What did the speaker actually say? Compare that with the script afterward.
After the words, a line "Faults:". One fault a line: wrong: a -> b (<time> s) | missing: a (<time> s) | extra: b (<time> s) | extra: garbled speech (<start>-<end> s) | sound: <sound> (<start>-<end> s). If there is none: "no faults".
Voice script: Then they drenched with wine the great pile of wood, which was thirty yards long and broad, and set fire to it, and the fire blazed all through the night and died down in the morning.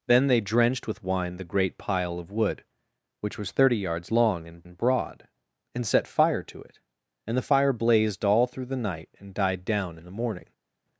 Then they drenched with wine the great pile of wood, which was thirty yards long and and broad, and set fire to it, and the fire blazed all through the night and died down in the morning.
Faults:
extra: and (4.6 s)